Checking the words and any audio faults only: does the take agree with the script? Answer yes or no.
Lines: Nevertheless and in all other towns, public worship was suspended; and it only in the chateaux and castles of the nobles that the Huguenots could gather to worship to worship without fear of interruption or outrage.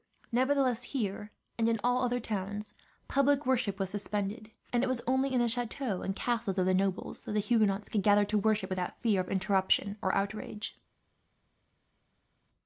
no